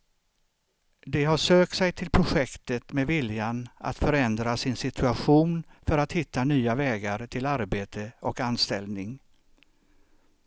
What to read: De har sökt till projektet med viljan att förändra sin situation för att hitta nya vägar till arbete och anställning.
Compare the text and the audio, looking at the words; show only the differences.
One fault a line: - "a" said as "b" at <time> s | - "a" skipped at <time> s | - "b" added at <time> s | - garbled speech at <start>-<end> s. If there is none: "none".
- "sig" added at 1.8 s